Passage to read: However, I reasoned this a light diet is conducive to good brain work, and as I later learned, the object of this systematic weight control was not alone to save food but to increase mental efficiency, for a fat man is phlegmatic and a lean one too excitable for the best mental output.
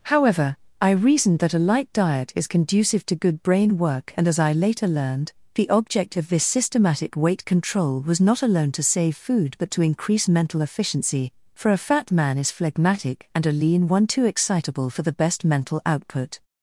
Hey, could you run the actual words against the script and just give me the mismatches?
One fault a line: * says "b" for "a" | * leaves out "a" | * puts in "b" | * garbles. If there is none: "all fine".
* says "that" for "this"